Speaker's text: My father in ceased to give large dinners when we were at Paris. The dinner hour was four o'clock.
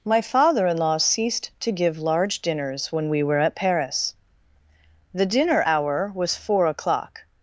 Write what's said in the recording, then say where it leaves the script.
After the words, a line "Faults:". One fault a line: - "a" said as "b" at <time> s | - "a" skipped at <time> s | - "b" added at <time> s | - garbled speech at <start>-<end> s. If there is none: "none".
My father in law ceased to give large dinners when we were at Paris. The dinner hour was four o'clock.
Faults:
- "law" added at 0.8 s